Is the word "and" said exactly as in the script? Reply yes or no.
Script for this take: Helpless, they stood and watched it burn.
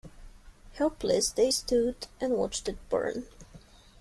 yes